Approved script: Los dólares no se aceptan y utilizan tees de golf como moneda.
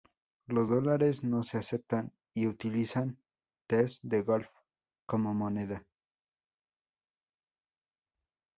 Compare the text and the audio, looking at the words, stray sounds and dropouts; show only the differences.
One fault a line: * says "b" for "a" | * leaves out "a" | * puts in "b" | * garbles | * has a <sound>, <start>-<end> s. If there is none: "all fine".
all fine